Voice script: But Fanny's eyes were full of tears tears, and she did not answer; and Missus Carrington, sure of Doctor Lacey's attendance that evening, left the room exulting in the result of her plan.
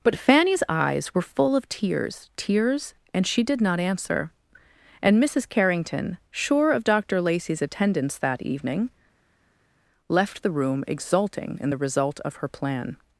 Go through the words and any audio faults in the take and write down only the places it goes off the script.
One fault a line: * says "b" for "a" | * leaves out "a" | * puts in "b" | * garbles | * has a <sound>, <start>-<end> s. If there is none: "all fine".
all fine